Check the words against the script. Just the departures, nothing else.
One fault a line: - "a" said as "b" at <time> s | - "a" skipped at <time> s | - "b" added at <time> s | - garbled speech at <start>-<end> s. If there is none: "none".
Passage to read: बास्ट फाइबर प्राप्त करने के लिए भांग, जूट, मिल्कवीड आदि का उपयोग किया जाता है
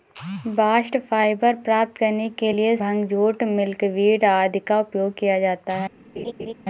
none